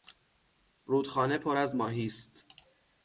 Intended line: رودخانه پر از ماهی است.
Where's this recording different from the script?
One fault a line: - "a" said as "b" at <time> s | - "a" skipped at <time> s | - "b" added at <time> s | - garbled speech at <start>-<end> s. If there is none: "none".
none